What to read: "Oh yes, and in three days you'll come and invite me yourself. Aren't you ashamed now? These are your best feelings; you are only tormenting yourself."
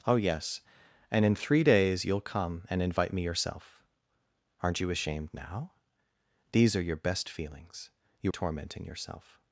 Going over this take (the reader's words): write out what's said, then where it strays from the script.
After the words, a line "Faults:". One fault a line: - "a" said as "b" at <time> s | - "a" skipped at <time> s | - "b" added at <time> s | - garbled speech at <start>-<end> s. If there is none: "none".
"Oh yes, and in three days you'll come and invite me yourself. Aren't you ashamed now? These are your best feelings; you tormenting yourself."
Faults:
- "are only" skipped at 8.3 s